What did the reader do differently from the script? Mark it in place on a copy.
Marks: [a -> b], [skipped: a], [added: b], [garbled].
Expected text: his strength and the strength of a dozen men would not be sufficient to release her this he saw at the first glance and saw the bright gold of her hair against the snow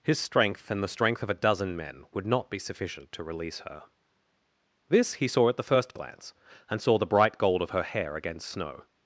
his strength and the strength of a dozen men would not be sufficient to release her this he saw at the first glance and saw the bright gold of her hair against [skipped: the] snow